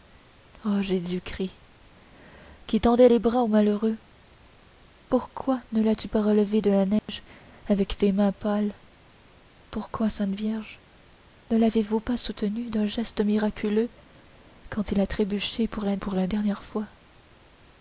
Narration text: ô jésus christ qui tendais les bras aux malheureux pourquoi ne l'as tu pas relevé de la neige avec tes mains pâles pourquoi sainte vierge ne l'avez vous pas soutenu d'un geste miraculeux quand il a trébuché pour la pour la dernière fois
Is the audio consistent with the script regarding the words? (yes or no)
yes